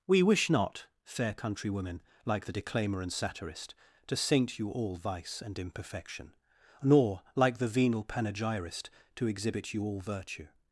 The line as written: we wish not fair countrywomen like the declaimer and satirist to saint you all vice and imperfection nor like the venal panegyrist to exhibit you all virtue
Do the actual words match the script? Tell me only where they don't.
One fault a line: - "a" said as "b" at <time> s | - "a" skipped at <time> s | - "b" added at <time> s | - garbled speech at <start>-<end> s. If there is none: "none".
none